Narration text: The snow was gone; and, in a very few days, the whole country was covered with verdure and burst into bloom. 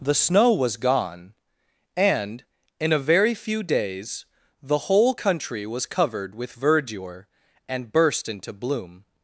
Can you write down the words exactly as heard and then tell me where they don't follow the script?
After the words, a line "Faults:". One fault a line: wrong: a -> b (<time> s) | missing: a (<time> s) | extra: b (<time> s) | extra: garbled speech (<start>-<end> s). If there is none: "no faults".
The snow was gone; and, in a very few days, the whole country was covered with verdure and burst into bloom.
Faults:
no faults